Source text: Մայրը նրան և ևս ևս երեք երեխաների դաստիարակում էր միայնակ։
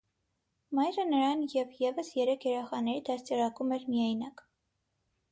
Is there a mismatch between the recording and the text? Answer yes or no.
yes